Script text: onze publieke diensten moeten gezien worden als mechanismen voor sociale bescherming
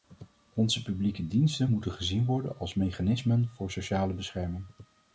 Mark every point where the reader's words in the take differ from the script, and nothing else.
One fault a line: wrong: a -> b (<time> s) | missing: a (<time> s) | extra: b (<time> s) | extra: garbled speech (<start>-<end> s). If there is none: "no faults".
no faults